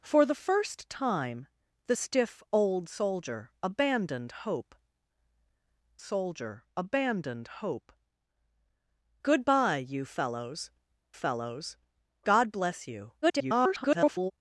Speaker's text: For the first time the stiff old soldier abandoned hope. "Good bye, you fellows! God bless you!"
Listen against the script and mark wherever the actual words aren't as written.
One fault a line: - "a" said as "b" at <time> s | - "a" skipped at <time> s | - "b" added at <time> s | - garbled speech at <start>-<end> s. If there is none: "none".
- "soldier abandoned hope" added at 6.0 s
- "fellows" added at 11.1 s
- garbled speech at 13.2-14.3 s